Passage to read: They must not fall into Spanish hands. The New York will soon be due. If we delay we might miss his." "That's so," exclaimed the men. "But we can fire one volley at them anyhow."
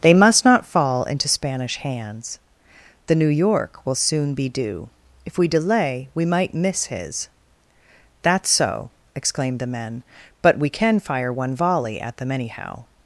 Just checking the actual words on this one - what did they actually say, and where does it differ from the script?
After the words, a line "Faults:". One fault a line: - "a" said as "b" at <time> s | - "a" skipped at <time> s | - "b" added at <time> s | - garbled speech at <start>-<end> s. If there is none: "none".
They must not fall into Spanish hands. The New York will soon be due. If we delay we might miss his." "That's so," exclaimed the men. "But we can fire one volley at them anyhow."
Faults:
none